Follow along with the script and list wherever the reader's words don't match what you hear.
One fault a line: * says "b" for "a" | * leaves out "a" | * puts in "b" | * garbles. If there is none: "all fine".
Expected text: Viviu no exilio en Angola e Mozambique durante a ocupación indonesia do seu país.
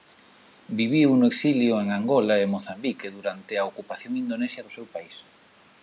all fine